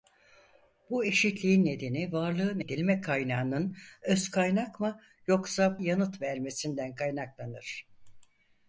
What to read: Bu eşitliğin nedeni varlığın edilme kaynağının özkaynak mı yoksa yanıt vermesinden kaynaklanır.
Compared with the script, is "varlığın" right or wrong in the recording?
right